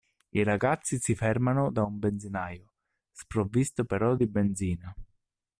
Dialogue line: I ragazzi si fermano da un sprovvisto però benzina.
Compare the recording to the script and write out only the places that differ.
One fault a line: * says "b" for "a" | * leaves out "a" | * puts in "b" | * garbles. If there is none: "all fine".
* puts in "benzinaio"
* puts in "di"